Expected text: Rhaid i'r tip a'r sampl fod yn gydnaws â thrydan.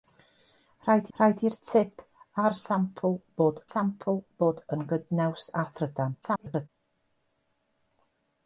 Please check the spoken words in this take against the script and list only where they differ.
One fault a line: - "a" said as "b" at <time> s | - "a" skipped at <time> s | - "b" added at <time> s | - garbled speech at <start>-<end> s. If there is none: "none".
- "rhaid" added at 1.2 s
- "sampl fod" added at 3.7 s
- garbled speech at 6.2-6.7 s